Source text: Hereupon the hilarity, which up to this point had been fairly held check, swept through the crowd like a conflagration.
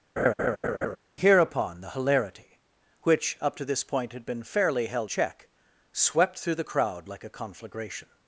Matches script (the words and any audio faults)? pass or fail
fail